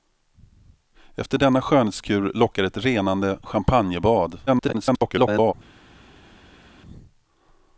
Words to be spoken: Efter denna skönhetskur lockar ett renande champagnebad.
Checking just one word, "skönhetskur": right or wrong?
right